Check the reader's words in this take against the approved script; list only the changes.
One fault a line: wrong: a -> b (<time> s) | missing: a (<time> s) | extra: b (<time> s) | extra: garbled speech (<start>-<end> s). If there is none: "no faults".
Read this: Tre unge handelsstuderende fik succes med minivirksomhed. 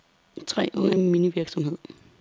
missing: handelsstuderende fik succes (0.9 s)